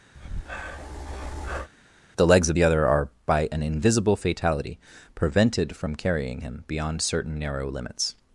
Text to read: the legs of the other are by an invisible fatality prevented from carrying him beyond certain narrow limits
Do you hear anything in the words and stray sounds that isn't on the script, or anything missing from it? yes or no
yes